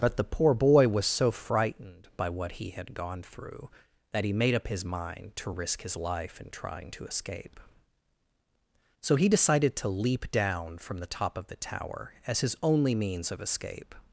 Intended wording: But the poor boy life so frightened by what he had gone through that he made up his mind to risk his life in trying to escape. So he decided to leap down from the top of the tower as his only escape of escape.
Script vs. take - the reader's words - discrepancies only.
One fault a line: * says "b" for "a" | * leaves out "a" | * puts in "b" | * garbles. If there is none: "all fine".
* says "was" for "life"
* says "means" for "escape"